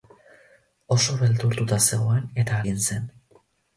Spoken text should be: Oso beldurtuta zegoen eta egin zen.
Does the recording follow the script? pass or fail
pass